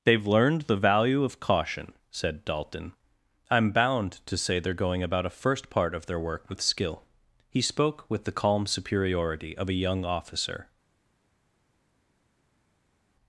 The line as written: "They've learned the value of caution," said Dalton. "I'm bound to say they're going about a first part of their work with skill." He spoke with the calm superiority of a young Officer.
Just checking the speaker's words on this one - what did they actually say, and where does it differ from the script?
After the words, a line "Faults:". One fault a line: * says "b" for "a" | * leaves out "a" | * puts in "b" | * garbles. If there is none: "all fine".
"They've learned the value of caution," said Dalton. "I'm bound to say they're going about a first part of their work with skill." He spoke with the calm superiority of a young Officer.
Faults:
all fine